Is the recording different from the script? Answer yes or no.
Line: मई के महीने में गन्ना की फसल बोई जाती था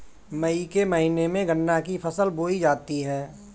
yes